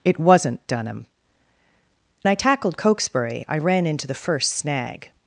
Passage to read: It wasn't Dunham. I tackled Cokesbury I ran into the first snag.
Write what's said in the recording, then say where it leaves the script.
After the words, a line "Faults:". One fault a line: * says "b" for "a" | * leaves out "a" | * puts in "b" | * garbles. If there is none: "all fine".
It wasn't Dunham. I tackled Cokesbury I ran into the first snag.
Faults:
all fine